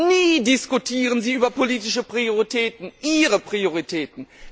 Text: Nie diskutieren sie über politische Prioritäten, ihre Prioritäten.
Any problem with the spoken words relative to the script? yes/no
no